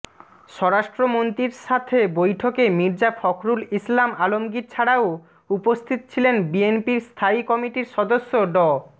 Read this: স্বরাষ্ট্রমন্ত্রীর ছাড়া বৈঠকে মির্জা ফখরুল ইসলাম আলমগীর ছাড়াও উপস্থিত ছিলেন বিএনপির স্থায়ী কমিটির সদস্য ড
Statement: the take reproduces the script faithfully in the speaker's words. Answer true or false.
false